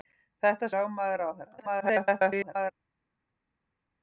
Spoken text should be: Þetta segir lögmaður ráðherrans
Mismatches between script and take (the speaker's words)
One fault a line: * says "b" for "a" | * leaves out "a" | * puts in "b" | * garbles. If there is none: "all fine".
* leaves out "segir"
* garbles